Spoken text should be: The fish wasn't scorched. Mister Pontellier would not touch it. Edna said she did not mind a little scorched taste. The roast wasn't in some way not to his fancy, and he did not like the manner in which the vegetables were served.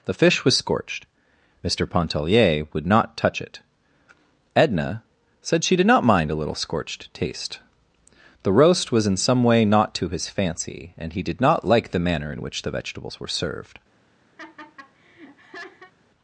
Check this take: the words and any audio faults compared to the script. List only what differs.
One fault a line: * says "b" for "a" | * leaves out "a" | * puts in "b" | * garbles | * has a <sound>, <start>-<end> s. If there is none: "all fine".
* says "was" for "wasn't"
* says "was" for "wasn't"
* has a laugh, 14.4-15.9 s